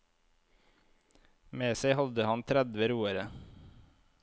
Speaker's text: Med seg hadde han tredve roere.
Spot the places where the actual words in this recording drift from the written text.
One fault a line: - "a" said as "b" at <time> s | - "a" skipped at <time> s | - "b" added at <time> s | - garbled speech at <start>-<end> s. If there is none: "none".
none